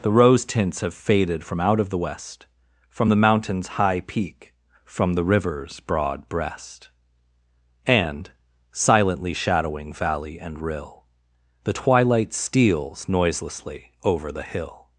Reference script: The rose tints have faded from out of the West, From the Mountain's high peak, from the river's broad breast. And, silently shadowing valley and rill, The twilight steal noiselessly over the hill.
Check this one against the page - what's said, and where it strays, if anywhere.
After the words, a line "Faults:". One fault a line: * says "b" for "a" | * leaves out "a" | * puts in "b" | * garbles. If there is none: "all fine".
The rose tints have faded from out of the West, From the Mountain's high peak, from the river's broad breast. And, silently shadowing valley and rill, The twilight steals noiselessly over the hill.
Faults:
* says "steals" for "steal"